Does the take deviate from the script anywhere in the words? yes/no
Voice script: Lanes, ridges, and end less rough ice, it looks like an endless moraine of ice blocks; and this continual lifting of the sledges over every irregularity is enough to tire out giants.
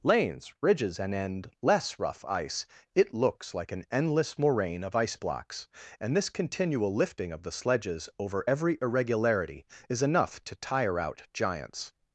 no